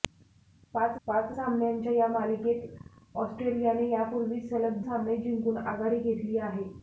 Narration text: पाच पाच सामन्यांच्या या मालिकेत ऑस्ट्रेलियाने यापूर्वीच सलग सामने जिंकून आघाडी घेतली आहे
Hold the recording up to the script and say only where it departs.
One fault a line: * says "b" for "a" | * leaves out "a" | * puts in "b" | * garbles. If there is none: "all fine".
all fine